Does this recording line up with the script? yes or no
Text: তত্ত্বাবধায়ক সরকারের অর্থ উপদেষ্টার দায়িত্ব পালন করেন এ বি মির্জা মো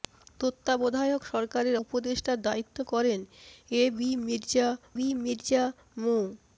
no